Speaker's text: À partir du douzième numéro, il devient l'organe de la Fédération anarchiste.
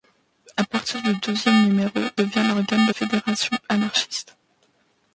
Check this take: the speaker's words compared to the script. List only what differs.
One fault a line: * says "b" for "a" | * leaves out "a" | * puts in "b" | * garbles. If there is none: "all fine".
* leaves out "il"
* leaves out "la"